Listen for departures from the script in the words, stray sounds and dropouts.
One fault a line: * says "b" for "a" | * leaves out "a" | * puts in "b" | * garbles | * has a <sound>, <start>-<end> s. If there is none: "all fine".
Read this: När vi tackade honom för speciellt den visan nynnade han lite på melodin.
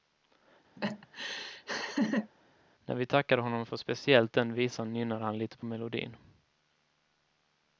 * has a laugh, 0.8-2.3 s